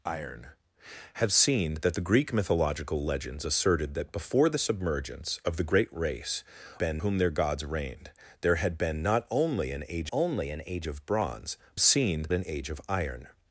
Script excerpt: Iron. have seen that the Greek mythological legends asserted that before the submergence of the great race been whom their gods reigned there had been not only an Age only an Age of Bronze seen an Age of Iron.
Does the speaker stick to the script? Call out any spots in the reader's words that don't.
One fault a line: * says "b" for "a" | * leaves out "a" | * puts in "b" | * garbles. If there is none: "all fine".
all fine